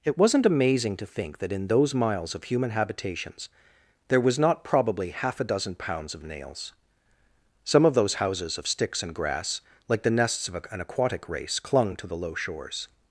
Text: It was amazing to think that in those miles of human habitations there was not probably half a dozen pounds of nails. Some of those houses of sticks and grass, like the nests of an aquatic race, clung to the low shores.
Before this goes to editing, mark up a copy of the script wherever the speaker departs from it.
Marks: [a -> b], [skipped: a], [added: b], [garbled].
It [was -> wasn't] amazing to think that in those miles of human habitations there was not probably half a dozen pounds of nails. Some of those houses of sticks and grass, like the nests of an aquatic race, clung to the low shores.